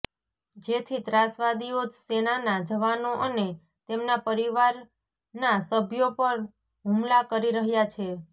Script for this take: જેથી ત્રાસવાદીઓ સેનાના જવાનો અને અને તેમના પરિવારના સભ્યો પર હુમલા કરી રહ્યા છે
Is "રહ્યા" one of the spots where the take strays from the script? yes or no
no